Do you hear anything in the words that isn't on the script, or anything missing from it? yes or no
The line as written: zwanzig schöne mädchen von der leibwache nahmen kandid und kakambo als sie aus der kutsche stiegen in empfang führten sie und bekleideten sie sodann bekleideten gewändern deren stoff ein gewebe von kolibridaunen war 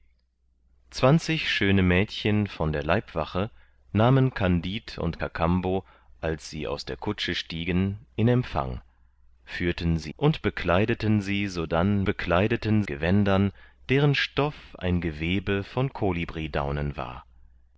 no